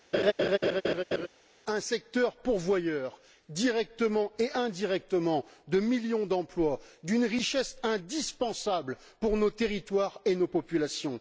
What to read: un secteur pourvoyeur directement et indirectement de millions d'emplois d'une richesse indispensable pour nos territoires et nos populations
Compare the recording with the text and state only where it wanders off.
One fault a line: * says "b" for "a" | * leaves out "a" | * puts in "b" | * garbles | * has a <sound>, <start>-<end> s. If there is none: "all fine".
* has a laugh, 0.1-1.3 s